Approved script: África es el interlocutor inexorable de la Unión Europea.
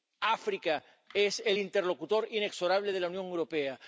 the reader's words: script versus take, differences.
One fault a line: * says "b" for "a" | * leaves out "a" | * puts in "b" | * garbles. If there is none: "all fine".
all fine